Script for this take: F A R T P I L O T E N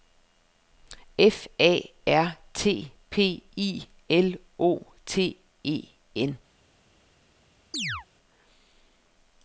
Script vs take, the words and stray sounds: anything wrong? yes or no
yes